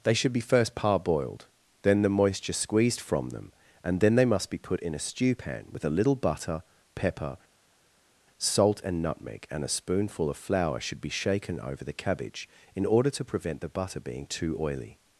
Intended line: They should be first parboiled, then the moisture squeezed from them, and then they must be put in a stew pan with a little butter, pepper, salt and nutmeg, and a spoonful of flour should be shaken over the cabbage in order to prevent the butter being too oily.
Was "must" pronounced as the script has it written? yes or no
yes